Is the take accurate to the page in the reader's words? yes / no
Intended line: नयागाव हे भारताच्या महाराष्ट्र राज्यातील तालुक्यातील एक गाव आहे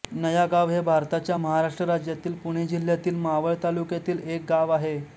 no